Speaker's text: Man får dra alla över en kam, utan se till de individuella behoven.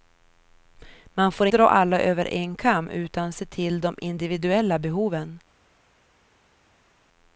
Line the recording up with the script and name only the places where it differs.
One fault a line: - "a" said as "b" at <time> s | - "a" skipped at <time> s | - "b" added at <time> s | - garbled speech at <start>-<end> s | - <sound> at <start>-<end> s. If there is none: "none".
none